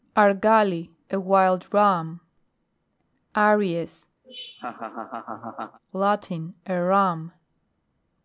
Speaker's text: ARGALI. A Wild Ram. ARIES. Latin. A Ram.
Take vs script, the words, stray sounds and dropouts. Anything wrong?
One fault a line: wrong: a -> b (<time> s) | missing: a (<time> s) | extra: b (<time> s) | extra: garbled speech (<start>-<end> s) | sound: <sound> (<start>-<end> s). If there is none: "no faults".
sound: laugh (4.2-5.8 s)